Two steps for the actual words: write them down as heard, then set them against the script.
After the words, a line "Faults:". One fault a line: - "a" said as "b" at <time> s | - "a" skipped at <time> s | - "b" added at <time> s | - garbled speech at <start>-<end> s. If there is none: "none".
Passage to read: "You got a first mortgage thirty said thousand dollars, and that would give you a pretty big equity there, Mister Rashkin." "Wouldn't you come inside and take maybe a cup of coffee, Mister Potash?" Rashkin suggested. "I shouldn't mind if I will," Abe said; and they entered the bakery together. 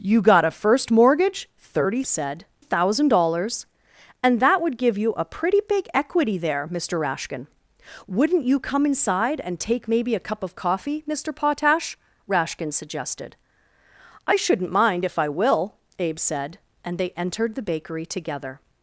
"You got a first mortgage thirty said thousand dollars, and that would give you a pretty big equity there, Mister Rashkin." "Wouldn't you come inside and take maybe a cup of coffee, Mister Potash?" Rashkin suggested. "I shouldn't mind if I will," Abe said; and they entered the bakery together.
Faults:
none